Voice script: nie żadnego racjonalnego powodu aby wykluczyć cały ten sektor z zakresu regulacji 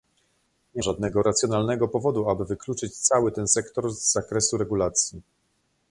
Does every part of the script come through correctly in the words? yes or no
yes